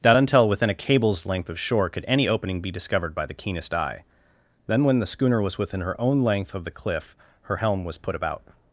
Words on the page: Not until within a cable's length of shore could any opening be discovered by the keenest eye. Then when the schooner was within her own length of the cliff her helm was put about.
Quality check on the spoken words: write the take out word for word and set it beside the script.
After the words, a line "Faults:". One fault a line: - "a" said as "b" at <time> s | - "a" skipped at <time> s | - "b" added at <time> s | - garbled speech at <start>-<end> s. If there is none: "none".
Not until within a cable's length of shore could any opening be discovered by the keenest eye. Then when the schooner was within her own length of the cliff her helm was put about.
Faults:
none